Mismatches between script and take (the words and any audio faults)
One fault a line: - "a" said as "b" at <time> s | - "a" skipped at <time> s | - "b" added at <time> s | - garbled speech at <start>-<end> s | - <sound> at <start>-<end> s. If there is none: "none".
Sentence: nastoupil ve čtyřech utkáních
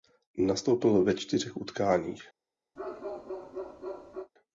- bark at 2.8-4.3 s